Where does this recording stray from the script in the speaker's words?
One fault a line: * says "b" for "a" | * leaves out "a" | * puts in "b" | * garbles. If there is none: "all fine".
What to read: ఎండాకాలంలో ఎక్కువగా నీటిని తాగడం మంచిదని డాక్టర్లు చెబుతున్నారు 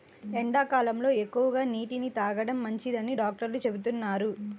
all fine